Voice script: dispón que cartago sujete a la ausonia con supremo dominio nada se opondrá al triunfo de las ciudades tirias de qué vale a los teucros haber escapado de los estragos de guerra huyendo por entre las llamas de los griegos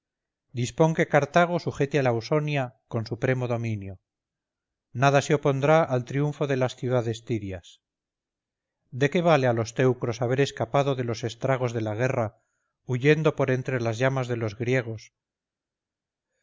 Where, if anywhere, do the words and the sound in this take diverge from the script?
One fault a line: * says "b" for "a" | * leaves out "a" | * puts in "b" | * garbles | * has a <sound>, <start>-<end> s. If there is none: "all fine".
* puts in "la"